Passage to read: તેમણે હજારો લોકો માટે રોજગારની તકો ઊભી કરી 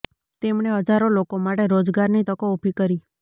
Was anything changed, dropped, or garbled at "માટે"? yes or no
no